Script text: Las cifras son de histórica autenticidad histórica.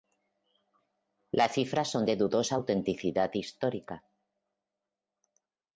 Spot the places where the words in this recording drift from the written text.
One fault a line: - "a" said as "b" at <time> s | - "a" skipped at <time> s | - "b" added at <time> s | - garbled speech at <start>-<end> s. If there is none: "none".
- "histórica" said as "dudosa" at 2.2 s